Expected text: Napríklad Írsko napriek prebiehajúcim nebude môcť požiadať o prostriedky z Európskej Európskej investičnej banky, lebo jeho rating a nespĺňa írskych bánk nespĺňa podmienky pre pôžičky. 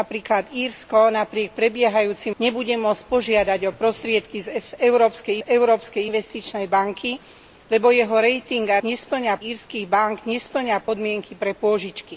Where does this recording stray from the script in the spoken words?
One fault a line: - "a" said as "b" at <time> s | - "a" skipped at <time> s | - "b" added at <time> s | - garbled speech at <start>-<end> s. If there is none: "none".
none